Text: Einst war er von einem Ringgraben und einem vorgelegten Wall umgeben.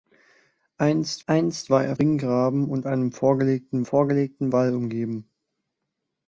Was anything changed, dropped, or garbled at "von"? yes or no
yes